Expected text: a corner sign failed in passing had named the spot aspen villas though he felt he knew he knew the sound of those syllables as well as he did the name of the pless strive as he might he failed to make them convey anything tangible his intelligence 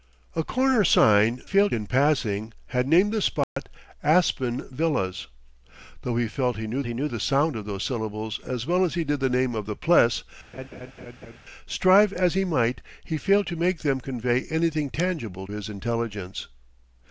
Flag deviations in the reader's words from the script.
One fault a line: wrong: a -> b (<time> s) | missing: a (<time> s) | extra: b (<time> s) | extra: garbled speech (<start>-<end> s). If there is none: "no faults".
no faults